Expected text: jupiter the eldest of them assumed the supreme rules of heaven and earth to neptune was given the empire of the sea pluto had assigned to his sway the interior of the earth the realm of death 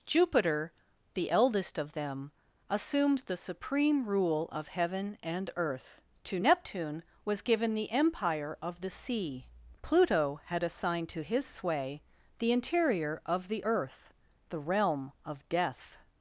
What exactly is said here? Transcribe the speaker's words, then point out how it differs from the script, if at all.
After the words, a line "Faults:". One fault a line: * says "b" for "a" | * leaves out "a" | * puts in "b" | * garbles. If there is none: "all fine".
jupiter the eldest of them assumed the supreme rule of heaven and earth to neptune was given the empire of the sea pluto had assigned to his sway the interior of the earth the realm of death
Faults:
* says "rule" for "rules"